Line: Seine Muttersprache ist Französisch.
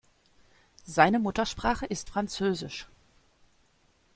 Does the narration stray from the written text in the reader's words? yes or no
no